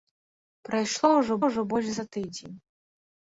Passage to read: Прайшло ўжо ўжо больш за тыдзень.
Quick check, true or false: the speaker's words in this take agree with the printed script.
true